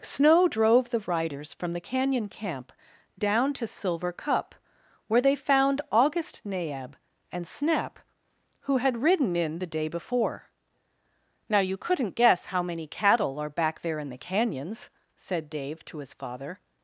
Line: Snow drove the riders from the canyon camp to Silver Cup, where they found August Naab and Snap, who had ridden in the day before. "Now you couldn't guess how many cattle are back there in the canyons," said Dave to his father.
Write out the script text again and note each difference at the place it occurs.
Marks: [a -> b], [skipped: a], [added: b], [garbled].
Snow drove the riders from the canyon camp [added: down] to Silver Cup, where they found August Naab and Snap, who had ridden in the day before. "Now you couldn't guess how many cattle are back there in the canyons," said Dave to his father.